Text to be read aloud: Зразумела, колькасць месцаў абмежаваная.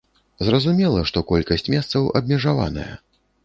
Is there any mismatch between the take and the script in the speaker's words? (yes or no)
yes